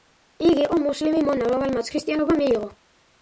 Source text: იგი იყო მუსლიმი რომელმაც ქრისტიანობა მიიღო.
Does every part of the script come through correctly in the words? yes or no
no